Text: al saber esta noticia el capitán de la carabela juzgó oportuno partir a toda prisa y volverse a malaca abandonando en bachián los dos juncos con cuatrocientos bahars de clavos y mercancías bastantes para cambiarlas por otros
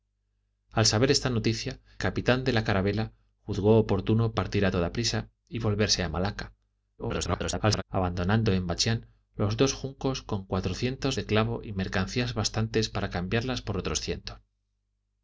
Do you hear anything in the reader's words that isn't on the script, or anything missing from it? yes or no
yes